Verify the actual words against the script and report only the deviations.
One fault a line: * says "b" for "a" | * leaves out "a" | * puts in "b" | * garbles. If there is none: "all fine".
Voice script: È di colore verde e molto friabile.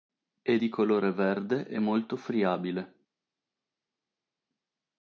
all fine